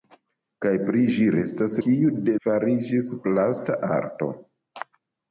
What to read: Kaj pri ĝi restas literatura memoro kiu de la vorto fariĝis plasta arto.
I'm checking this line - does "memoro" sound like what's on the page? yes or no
no